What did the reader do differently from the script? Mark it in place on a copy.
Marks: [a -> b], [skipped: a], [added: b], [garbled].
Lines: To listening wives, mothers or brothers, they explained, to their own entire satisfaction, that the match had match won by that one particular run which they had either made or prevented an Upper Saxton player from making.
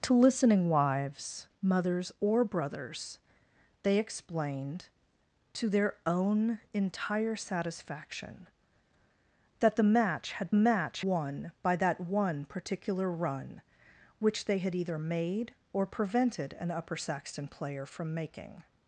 To listening wives, mothers or brothers, they explained, to their own entire satisfaction, that the match had match won by that one particular run which they had either made or prevented an Upper Saxton player from making.